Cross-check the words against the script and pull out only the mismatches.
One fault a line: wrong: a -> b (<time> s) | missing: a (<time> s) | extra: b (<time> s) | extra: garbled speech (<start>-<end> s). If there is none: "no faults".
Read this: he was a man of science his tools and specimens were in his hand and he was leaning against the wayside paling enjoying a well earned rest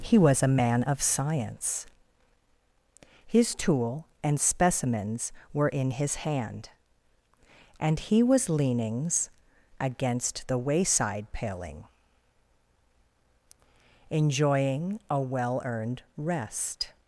wrong: tools -> tool (3.5 s)
wrong: leaning -> leanings (8.5 s)